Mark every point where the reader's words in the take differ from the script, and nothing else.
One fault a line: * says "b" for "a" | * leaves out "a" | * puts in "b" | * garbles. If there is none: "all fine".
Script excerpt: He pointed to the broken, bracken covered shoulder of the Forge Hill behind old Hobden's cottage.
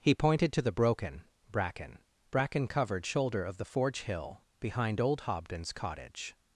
* puts in "bracken"